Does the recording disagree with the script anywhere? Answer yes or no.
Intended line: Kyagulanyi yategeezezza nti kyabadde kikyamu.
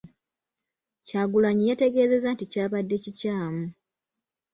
no